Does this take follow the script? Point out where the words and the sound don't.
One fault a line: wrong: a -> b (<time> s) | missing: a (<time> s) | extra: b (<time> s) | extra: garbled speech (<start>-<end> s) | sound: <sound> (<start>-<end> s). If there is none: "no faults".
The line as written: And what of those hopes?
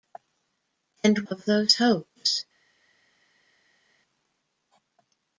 missing: what (1.2 s)